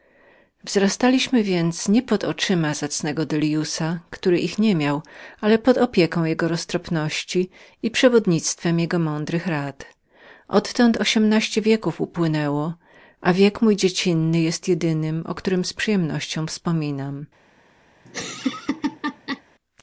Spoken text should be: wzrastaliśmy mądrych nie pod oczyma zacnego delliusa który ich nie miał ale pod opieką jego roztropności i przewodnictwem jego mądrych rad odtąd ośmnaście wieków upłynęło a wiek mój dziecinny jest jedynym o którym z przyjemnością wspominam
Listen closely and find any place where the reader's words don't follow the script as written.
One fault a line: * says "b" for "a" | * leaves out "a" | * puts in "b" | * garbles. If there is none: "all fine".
* says "więc" for "mądrych"